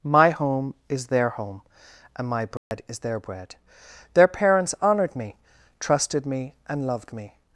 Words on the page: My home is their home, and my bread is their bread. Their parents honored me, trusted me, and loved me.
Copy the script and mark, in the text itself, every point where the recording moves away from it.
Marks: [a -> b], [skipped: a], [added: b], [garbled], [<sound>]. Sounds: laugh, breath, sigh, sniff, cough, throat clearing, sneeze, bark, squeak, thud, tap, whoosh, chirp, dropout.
My home is their home, and my bread [dropout] is their bread. Their parents honored me, trusted me, and loved me.